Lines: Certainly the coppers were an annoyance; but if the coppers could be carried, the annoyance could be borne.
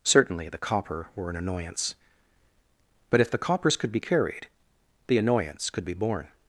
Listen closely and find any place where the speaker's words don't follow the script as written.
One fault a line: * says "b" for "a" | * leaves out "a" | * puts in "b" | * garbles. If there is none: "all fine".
* says "copper" for "coppers"